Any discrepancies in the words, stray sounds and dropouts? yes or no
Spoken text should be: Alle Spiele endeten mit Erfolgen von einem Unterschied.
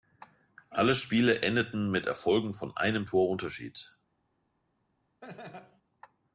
yes